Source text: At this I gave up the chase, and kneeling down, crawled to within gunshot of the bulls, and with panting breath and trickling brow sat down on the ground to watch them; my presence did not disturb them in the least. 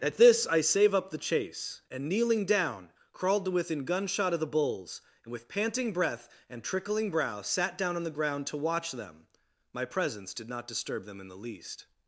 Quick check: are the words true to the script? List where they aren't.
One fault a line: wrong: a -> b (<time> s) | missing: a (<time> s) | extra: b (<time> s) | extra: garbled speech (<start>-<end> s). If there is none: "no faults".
wrong: gave -> save (0.6 s)